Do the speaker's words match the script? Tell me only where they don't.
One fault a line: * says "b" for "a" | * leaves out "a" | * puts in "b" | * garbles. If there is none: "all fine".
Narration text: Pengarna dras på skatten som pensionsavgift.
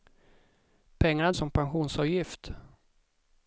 * leaves out "dras på skatten"